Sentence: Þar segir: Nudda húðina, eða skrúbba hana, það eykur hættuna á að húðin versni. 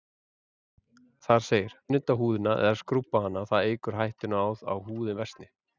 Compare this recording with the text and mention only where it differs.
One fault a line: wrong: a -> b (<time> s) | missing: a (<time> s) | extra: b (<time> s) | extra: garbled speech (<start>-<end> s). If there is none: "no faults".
no faults